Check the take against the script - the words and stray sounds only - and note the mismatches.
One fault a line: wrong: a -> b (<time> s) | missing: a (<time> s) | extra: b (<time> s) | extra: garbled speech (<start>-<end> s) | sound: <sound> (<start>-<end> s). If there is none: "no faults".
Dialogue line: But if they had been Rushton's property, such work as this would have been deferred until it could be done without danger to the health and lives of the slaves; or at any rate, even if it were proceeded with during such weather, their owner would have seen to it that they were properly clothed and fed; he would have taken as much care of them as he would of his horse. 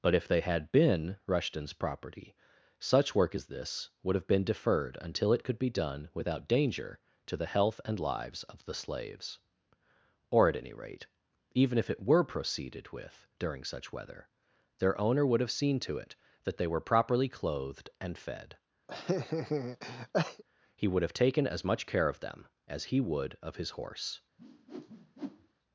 sound: laugh (18.9-20.4 s)
sound: whoosh (24.4-25.5 s)